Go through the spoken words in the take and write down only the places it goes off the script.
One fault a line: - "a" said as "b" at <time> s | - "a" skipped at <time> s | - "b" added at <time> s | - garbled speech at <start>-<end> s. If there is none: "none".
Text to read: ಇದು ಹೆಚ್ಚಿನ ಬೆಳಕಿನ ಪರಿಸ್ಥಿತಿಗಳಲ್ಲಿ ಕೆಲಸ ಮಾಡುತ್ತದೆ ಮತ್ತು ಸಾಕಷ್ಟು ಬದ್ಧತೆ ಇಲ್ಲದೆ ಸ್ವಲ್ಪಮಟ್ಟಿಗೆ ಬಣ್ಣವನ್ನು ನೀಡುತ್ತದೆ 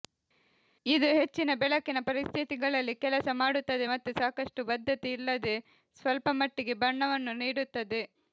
none